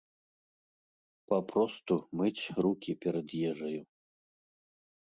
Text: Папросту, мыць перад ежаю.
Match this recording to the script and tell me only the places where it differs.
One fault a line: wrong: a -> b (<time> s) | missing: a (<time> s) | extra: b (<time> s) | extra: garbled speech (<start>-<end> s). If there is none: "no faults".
extra: рукі (2.7 s)